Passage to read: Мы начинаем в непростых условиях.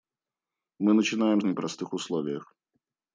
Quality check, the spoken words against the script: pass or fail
pass